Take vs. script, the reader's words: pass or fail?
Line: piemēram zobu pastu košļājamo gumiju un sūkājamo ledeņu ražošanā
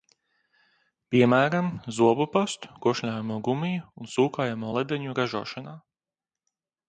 pass